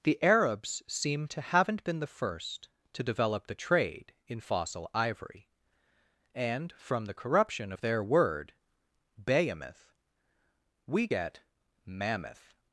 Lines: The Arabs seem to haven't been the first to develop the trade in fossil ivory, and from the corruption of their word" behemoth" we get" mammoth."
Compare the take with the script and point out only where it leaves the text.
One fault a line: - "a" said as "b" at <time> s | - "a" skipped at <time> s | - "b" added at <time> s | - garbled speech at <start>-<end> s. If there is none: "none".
none